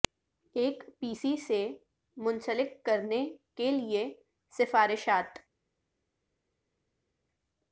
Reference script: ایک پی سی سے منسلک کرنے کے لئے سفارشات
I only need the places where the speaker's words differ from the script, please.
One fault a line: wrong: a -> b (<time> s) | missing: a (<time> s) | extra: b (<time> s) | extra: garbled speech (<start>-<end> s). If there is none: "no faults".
no faults